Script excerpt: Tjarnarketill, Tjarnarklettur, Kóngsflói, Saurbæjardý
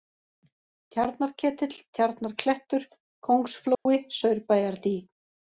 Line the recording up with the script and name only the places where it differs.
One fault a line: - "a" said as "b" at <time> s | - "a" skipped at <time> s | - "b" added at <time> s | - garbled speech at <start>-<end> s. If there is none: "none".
none